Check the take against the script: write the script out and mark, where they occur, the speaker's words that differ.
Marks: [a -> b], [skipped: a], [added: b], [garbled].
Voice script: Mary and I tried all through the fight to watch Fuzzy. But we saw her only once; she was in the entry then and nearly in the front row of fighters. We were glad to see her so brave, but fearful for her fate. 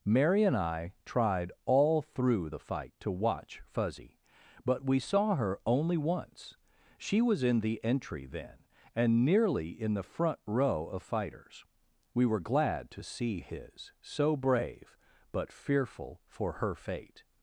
Mary and I tried all through the fight to watch Fuzzy. But we saw her only once; she was in the entry then and nearly in the front row of fighters. We were glad to see [her -> his] so brave, but fearful for her fate.